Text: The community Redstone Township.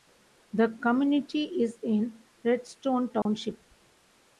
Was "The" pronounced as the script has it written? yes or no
yes